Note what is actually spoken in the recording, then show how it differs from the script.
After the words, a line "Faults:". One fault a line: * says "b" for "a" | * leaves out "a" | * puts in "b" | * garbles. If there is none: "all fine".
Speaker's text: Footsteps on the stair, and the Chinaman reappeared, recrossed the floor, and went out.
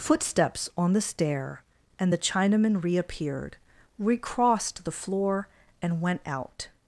Footsteps on the stair, and the Chinaman reappeared, recrossed the floor, and went out.
Faults:
all fine